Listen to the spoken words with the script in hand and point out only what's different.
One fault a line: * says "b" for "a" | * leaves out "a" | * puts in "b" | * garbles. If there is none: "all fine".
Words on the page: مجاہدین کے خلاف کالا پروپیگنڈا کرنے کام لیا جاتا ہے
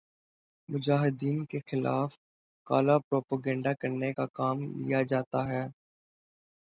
* puts in "کا"